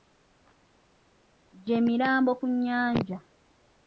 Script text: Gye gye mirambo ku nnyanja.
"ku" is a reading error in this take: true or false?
false